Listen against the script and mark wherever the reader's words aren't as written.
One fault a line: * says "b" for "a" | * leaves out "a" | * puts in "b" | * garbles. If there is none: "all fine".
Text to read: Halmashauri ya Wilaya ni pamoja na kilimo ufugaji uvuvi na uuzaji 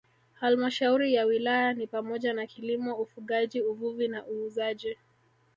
all fine